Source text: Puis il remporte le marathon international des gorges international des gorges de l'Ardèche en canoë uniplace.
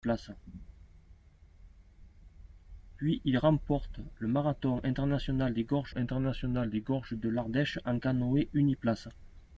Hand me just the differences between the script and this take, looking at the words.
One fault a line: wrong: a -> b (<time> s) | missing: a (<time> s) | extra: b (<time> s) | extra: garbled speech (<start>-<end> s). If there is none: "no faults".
no faults